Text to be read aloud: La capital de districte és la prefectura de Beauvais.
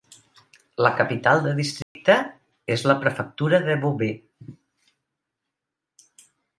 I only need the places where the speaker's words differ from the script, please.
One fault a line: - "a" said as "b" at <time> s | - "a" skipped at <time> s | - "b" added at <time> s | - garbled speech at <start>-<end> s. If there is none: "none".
none